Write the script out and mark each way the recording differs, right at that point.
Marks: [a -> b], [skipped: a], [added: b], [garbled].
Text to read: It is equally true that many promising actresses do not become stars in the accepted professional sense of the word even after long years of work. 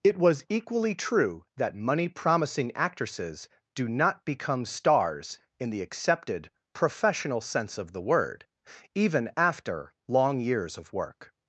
It [is -> was] equally true that [many -> money] promising actresses do not become stars in the accepted professional sense of the word even after long years of work.